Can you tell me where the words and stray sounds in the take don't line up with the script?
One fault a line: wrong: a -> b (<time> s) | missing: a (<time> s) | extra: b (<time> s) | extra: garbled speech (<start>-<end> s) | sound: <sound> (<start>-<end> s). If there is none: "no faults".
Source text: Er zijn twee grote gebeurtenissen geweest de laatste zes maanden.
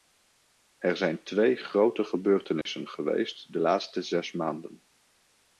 sound: dropout (2.6-2.7 s)